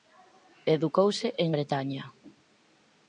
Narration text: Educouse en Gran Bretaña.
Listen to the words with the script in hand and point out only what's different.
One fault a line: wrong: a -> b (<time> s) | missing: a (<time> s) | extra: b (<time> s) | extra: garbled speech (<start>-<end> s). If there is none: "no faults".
missing: Gran (1.5 s)